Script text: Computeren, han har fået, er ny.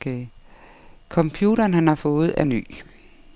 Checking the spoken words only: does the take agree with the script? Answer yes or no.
yes